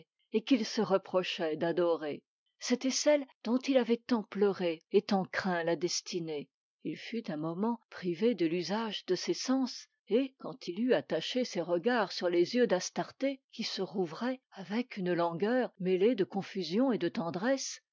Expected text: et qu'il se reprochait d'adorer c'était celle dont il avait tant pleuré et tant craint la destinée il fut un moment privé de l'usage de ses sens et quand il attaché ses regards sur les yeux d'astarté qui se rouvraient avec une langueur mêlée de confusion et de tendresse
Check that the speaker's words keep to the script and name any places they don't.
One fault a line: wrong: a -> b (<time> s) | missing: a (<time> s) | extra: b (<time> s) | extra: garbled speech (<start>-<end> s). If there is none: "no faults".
extra: eut (10.8 s)